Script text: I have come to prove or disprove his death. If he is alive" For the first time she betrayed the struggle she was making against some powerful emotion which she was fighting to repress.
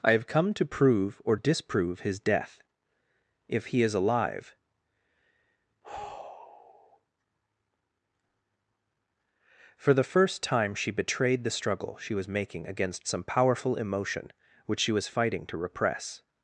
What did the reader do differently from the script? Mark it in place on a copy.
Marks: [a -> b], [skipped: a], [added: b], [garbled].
I have come to prove or disprove his death. If he is alive" For the first time she betrayed the struggle she was making against some powerful emotion which she was fighting to repress.